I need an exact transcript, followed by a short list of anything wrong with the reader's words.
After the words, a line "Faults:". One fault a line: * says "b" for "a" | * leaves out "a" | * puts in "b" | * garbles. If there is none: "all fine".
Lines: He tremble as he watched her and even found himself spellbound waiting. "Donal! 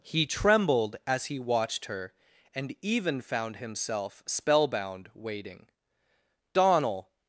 He trembled as he watched her and even found himself spellbound waiting. "Donal!
Faults:
* says "trembled" for "tremble"